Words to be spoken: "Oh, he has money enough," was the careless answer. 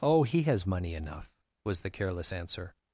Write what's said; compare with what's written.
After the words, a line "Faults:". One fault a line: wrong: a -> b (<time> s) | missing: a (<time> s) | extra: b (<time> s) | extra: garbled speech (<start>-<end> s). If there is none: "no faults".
"Oh, he has money enough," was the careless answer.
Faults:
no faults